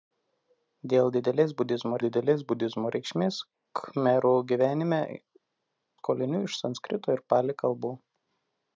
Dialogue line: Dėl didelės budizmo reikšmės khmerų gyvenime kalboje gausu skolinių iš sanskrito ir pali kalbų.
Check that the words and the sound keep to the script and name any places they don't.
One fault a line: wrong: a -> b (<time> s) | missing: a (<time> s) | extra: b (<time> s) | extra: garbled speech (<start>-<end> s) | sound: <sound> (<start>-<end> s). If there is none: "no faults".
extra: didelės budizmo (2.0 s)
missing: kalboje gausu (5.0 s)